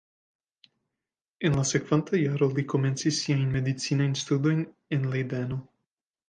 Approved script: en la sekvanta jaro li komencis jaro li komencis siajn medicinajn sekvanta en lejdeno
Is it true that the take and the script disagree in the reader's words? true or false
true